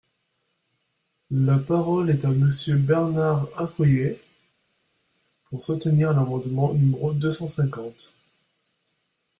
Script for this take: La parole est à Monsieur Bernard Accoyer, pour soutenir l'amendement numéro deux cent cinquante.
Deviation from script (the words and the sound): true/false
false